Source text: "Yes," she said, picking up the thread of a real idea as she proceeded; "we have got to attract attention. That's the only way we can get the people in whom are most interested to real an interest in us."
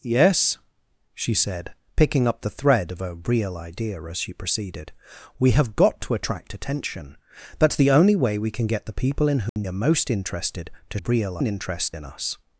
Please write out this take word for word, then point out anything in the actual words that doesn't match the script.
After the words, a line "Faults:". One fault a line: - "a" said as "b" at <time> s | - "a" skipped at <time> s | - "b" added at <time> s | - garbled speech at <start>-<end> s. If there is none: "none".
"Yes," she said, picking up the thread of a real idea as she proceeded; "we have got to attract attention. That's the only way we can get the people in whom are most interested to real an interest in us."
Faults:
none